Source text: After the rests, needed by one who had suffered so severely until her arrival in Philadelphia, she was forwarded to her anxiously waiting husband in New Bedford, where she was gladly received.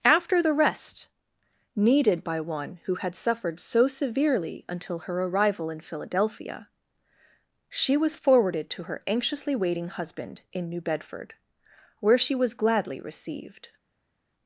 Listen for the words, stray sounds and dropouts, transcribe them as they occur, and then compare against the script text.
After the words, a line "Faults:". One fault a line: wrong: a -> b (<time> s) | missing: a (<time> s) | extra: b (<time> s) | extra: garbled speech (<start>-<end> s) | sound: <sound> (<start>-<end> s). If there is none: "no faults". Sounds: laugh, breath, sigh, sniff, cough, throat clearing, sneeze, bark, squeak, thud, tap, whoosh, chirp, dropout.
After the rest, needed by one who had suffered so severely until her arrival in Philadelphia, she was forwarded to her anxiously waiting husband in New Bedford, where she was gladly received.
Faults:
wrong: rests -> rest (0.5 s)